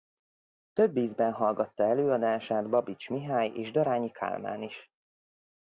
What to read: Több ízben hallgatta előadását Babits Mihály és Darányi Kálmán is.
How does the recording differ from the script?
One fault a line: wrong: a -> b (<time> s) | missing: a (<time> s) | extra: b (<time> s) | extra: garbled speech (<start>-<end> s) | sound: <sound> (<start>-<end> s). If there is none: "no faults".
no faults